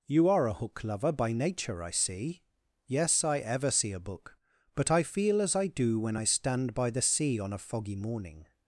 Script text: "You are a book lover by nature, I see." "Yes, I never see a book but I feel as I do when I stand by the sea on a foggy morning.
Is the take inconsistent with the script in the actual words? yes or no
yes